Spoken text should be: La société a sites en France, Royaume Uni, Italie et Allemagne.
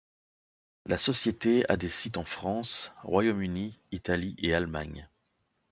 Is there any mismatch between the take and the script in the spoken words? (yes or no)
yes